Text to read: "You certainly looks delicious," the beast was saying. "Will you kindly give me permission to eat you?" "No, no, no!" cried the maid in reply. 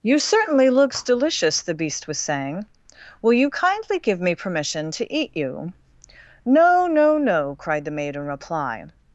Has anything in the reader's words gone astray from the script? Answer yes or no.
no